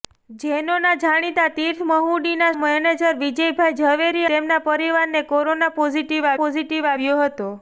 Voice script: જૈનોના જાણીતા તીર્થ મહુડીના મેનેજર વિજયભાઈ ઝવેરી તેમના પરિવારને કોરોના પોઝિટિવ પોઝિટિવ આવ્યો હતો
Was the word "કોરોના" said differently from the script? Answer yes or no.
no